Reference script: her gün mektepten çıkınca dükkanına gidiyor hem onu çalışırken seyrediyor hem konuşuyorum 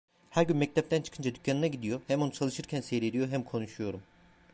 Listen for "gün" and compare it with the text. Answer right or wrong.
right